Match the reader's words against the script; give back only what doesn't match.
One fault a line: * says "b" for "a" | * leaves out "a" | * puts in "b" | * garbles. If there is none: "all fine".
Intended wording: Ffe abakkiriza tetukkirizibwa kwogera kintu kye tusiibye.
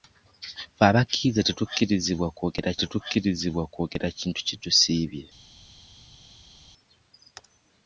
* puts in "tetukkirizibwa kwogera"